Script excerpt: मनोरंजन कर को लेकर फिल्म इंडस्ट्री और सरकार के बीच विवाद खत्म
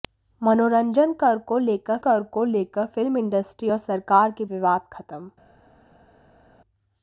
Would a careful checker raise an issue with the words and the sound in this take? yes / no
yes